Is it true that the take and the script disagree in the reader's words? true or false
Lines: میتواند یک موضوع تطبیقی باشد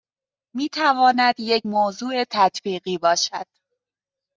false